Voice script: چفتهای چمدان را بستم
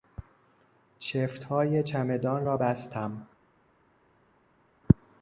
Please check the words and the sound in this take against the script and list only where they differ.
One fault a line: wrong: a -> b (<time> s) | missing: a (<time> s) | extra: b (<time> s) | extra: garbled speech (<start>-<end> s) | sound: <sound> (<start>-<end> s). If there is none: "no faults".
no faults